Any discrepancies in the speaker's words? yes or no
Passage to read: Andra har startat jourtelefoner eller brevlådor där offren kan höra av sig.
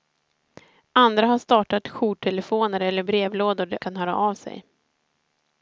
yes